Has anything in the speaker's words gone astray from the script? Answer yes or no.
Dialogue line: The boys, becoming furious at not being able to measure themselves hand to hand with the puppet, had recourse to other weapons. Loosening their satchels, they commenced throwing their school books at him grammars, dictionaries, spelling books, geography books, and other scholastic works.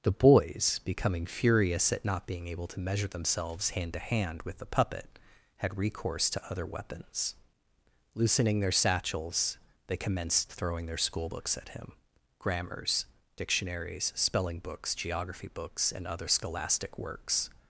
no